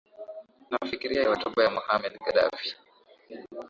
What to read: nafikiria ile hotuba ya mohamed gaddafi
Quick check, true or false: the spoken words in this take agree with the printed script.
false